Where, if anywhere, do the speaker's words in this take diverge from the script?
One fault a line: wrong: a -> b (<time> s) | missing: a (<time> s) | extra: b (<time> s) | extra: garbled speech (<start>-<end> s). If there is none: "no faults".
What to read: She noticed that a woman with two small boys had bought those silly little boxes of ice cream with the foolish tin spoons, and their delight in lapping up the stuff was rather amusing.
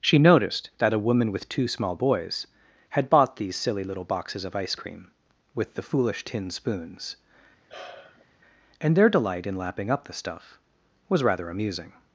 wrong: those -> these (3.4 s)